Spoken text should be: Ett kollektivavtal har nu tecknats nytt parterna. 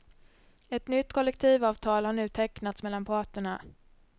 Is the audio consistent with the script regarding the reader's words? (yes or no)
no